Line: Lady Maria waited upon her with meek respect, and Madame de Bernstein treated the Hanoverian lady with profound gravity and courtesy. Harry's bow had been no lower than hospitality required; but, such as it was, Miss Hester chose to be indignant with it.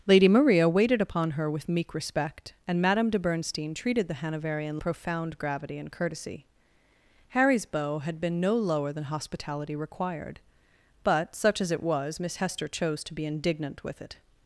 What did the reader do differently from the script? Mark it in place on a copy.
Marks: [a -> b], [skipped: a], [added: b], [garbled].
Lady Maria waited upon her with meek respect, and Madame de Bernstein treated the Hanoverian [skipped: lady with] profound gravity and courtesy. Harry's bow had been no lower than hospitality required; but, such as it was, Miss Hester chose to be indignant with it.